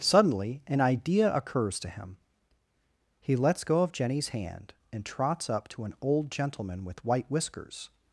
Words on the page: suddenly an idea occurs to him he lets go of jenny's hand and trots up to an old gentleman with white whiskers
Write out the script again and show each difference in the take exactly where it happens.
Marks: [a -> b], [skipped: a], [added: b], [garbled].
suddenly an idea occurs to him he lets go of jenny's hand and trots up to an old gentleman with white whiskers